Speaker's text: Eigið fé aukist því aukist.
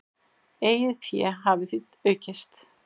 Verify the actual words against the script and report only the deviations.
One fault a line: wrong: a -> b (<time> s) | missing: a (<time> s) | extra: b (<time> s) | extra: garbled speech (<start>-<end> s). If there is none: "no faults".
wrong: aukist -> hafi (1.4 s)